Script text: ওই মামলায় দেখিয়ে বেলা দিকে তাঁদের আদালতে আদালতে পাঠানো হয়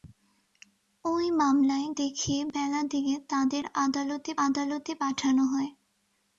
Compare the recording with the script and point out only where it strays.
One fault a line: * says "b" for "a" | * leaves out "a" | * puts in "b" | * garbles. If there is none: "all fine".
all fine